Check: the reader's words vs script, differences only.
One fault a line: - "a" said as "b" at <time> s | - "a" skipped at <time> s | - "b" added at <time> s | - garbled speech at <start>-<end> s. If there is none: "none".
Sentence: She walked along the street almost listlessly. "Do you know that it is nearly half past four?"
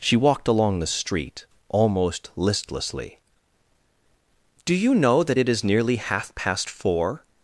none